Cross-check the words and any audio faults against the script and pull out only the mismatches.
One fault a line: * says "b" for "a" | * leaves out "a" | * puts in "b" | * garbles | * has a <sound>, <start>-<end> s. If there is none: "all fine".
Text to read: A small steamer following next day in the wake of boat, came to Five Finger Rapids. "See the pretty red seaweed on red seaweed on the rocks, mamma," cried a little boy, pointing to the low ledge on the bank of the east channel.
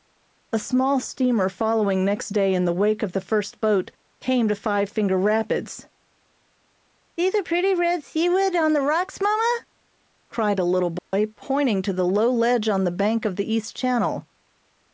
* puts in "the first"
* leaves out "red seaweed on"
* has a dropout, 11.0-11.1 s